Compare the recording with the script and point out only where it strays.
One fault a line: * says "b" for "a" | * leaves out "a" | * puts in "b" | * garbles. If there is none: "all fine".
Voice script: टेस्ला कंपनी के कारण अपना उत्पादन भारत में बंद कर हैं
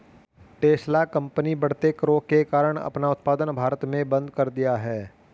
* puts in "बढ़ते करों"
* puts in "दिया"